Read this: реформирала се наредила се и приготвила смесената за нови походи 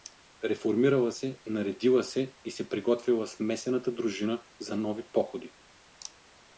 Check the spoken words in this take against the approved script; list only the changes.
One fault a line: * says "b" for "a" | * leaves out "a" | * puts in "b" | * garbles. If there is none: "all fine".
* puts in "се"
* puts in "дружина"